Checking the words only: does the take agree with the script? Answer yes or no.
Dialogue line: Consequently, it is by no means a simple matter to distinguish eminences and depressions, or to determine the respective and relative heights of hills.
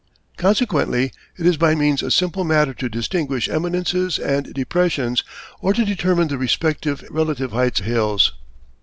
no